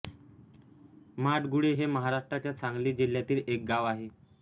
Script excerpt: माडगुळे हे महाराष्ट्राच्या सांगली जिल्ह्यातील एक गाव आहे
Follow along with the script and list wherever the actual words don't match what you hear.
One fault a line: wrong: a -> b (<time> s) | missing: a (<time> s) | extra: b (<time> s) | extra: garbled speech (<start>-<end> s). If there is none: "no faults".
no faults